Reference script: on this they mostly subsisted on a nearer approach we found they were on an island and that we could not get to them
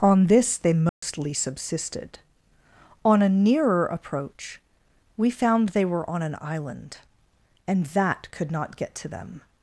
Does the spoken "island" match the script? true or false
true